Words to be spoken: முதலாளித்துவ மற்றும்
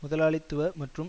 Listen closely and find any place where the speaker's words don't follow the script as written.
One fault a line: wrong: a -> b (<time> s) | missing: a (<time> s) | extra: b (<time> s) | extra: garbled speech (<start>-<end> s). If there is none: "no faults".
no faults